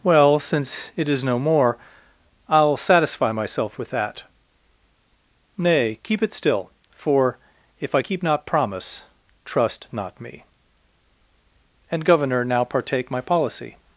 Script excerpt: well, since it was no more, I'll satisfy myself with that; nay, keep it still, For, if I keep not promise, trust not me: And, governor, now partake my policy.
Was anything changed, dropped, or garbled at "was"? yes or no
yes